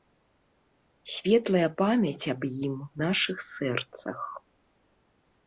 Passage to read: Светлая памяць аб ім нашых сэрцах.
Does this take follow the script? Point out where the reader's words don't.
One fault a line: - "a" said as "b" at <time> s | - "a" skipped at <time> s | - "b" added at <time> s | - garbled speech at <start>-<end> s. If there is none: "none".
none